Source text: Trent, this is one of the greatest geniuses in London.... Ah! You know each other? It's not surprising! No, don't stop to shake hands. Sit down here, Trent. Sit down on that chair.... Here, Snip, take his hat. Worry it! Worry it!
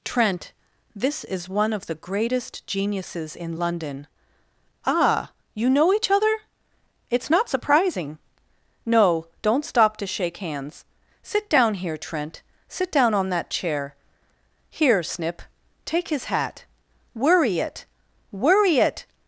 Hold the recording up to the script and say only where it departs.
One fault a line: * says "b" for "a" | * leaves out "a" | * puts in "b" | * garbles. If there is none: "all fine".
all fine